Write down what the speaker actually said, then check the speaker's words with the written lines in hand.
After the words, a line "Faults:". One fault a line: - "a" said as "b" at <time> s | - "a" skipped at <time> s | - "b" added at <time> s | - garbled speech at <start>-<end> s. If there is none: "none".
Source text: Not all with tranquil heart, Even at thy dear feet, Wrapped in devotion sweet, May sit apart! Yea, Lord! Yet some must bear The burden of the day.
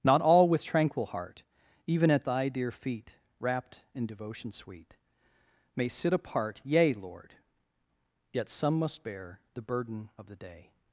Not all with tranquil heart, Even at thy dear feet, Wrapped in devotion sweet, May sit apart! Yea, Lord! Yet some must bear The burden of the day.
Faults:
none